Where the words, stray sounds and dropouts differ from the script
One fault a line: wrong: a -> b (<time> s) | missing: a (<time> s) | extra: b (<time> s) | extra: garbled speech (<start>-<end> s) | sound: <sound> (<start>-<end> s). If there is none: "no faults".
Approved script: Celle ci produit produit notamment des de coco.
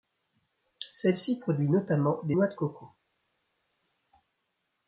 missing: produit (1.7 s)
extra: noix (2.3 s)